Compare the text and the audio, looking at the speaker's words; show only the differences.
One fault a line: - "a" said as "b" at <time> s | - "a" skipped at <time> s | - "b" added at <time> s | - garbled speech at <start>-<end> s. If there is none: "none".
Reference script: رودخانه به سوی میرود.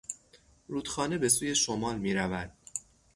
- "شمال" added at 1.6 s